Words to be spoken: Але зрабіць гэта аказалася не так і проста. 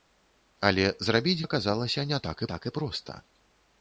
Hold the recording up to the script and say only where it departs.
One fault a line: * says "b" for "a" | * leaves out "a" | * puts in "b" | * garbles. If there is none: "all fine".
* leaves out "гэта"
* puts in "так"